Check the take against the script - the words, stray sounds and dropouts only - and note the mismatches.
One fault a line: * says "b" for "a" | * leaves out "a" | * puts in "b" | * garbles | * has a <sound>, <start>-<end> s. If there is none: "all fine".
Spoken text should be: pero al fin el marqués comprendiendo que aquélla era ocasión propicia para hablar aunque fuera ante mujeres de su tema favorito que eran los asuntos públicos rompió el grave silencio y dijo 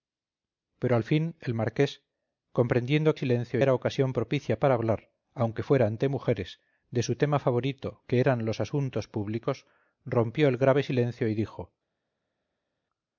* says "silencio" for "aquélla"